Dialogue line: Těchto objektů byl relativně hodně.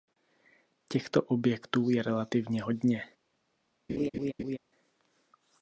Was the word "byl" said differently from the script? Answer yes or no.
yes